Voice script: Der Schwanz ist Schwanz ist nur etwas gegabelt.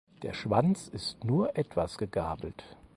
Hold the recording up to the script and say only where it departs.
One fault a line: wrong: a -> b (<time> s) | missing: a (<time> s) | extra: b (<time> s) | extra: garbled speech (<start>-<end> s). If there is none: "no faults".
missing: Schwanz ist (1.2 s)